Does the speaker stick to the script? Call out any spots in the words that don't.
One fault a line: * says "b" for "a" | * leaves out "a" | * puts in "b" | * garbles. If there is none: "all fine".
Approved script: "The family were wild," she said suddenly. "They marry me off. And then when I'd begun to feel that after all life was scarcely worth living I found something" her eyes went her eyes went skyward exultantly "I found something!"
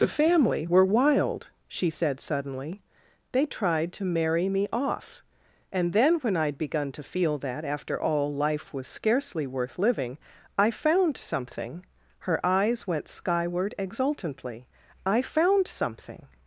* puts in "tried to"
* leaves out "her eyes went"